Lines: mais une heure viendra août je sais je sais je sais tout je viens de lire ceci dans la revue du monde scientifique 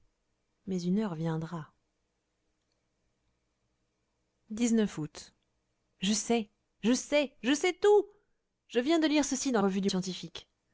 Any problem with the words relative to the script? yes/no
yes